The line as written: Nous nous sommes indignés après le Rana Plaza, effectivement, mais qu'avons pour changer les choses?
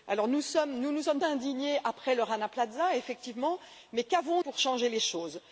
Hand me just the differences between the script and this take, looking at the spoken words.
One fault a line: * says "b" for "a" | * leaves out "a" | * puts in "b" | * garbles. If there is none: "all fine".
all fine